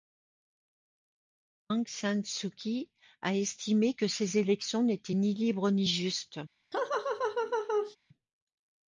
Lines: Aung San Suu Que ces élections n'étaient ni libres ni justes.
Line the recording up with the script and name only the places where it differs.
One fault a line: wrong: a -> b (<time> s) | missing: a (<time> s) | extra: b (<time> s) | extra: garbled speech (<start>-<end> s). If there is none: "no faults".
extra: Kyi a estimé (2.5 s)